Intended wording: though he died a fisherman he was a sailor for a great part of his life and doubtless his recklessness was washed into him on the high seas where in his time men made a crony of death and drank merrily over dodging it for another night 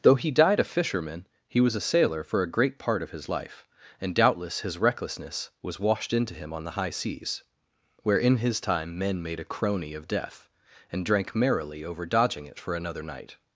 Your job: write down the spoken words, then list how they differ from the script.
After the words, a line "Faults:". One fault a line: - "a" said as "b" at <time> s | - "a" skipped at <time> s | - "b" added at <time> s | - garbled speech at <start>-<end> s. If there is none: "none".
though he died a fisherman he was a sailor for a great part of his life and doubtless his recklessness was washed into him on the high seas where in his time men made a crony of death and drank merrily over dodging it for another night
Faults:
none